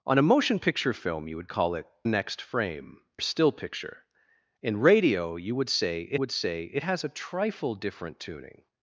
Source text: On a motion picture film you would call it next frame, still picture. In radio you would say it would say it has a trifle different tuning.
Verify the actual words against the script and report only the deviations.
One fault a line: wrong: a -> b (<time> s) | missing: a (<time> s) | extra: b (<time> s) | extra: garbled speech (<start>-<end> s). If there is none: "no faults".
no faults